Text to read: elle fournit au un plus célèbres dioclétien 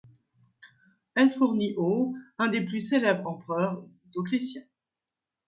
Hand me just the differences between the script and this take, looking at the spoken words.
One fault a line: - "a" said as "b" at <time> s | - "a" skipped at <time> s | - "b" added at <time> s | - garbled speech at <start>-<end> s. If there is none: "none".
- "des" added at 2.5 s
- "empereurs" added at 3.3 s